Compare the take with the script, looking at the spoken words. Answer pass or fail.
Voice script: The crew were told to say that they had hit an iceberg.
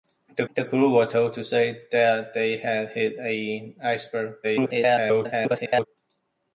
fail